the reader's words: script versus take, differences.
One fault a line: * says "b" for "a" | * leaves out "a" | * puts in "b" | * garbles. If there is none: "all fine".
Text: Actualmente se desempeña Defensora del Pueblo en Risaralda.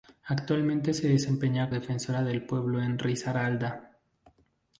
all fine